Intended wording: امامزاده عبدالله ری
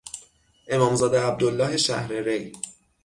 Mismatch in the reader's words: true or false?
true